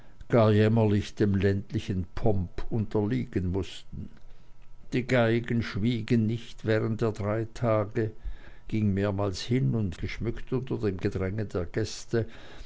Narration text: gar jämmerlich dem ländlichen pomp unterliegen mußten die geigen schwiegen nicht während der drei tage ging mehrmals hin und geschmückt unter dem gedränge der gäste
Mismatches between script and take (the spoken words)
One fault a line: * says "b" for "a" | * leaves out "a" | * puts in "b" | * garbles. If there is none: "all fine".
all fine